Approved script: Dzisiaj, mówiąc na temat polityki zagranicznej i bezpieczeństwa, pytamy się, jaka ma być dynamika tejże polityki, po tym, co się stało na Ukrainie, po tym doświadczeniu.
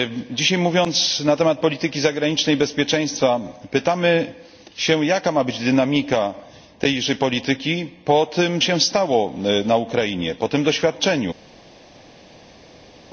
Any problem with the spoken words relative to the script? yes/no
yes